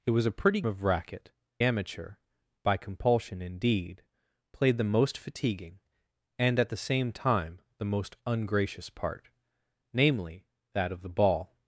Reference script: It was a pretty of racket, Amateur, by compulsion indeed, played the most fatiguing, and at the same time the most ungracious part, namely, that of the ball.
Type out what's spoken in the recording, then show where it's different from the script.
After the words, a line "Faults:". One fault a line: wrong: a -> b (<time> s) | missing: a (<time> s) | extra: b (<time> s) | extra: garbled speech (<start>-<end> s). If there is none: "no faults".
It was a pretty of racket, Amateur, by compulsion indeed, played the most fatiguing, and at the same time the most ungracious part, namely, that of the ball.
Faults:
no faults